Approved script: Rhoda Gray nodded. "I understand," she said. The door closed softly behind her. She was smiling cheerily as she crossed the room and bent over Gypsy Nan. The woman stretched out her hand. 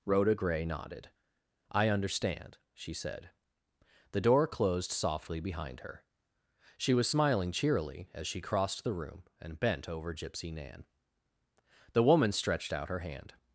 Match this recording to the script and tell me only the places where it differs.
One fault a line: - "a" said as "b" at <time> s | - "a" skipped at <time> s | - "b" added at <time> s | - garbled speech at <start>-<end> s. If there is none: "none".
none